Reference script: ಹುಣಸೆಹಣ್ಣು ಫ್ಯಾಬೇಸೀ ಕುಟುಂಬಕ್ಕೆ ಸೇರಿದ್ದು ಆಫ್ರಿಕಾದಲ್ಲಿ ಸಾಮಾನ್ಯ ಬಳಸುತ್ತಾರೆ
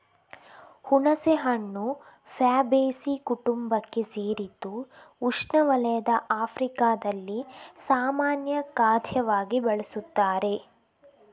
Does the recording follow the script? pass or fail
fail